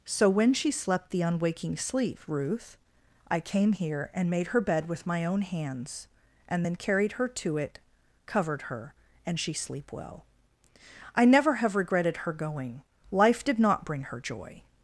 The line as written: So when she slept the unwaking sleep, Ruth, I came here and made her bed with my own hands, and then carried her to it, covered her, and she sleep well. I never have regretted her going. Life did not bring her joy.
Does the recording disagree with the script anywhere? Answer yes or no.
no